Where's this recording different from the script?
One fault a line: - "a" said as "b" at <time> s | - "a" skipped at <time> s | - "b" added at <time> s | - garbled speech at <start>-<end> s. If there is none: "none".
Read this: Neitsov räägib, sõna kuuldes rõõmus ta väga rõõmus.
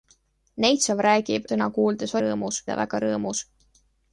none